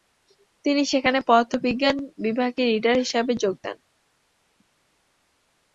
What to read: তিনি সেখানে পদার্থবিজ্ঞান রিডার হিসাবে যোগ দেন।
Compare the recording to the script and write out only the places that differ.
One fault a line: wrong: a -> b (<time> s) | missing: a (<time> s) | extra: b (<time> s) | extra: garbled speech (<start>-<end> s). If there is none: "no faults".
extra: বিভাগে (2.2 s)